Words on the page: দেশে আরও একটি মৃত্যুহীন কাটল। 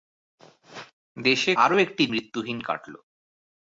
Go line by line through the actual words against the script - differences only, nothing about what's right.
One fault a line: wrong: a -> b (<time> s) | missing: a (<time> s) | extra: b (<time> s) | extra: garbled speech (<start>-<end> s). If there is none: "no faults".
no faults